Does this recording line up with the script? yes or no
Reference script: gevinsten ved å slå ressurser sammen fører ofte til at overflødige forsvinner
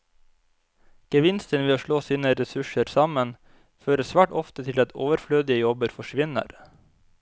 no